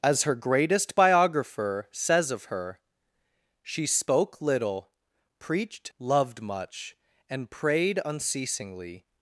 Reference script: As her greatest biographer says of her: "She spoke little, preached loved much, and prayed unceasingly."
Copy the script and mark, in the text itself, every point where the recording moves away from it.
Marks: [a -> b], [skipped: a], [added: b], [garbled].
As her greatest biographer says of her: "She spoke little, preached loved much, and prayed unceasingly."